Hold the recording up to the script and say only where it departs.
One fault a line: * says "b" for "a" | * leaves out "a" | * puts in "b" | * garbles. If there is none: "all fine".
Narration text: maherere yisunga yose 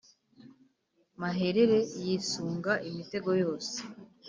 * puts in "imitego"